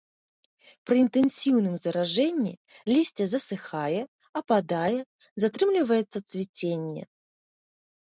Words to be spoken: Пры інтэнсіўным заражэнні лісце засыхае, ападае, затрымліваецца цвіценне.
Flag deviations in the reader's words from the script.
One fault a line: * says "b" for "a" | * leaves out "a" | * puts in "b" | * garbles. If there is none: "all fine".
all fine